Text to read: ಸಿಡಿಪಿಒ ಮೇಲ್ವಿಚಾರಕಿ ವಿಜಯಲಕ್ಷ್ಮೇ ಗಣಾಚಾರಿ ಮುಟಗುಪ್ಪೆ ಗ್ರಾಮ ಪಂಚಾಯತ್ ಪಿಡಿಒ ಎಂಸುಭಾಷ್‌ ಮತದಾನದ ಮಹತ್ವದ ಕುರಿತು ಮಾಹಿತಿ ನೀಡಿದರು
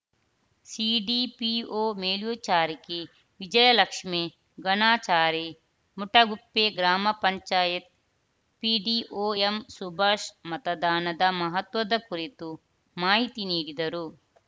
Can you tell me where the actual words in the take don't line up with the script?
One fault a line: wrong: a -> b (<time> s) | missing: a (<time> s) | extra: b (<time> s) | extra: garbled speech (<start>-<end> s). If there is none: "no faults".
no faults